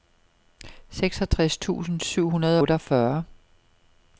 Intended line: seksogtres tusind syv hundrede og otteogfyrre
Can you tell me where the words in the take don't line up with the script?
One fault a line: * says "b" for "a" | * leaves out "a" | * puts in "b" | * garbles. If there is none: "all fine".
* leaves out "og"